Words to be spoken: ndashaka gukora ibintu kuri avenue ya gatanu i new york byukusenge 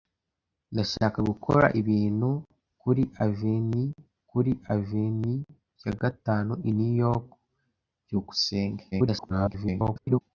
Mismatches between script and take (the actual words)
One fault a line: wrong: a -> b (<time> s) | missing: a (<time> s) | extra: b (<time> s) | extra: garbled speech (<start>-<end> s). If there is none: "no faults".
extra: kuri avenue (4.3 s)
extra: garbled speech (8.9-10.2 s)